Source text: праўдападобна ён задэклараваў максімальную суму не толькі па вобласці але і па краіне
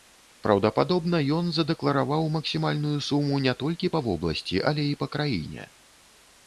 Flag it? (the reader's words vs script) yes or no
no